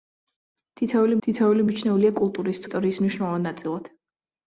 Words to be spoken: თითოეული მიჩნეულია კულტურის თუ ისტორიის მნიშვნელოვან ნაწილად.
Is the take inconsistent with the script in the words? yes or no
yes